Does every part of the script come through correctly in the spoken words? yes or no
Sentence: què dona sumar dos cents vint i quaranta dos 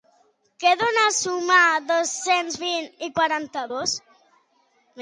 yes